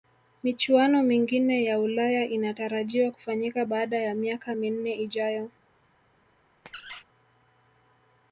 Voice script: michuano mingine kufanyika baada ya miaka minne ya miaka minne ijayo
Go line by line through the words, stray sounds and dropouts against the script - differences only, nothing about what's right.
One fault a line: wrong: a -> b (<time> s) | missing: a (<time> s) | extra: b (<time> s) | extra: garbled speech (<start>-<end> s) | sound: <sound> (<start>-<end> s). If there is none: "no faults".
wrong: kufanyika baada ya miaka minne -> ya ulaya inatarajiwa kufanyika baada (1.6 s)
sound: squeak (6.7-7.0 s)